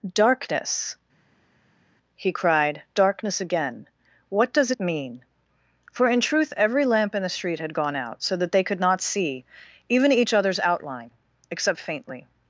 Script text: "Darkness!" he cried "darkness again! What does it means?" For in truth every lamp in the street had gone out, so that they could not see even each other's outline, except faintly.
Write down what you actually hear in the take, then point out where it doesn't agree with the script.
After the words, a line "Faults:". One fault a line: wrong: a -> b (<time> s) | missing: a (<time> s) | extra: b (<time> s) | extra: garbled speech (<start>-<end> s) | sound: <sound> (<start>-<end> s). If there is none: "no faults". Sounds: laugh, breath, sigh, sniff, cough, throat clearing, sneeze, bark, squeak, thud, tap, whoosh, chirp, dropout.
"Darkness!" he cried "darkness again! What does it mean?" For in truth every lamp in the street had gone out, so that they could not see even each other's outline, except faintly.
Faults:
wrong: means -> mean (4.8 s)